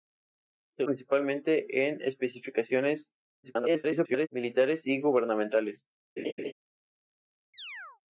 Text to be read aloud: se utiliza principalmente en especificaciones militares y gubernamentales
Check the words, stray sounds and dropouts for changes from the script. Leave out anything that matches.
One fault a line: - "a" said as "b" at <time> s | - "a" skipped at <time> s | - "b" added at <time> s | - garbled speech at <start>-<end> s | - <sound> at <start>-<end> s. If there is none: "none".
- "utiliza" skipped at 0.8 s
- garbled speech at 3.4-4.3 s
- laugh at 6.2-6.5 s
- chirp at 7.5-8.0 s